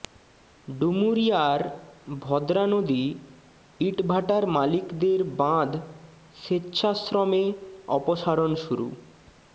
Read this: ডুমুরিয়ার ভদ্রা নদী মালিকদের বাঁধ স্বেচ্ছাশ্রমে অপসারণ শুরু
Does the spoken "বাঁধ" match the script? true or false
true